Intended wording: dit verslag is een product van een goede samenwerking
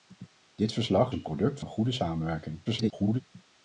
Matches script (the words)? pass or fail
fail